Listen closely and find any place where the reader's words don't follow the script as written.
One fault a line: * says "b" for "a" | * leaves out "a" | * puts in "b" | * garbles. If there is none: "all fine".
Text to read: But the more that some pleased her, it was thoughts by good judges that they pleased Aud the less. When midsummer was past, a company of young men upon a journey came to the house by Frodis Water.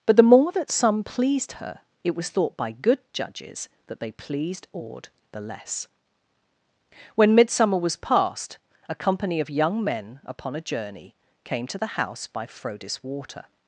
* says "thought" for "thoughts"